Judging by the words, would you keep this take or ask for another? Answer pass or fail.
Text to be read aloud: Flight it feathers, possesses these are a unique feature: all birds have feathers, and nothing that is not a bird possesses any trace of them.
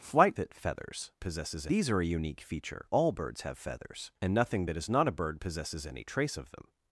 pass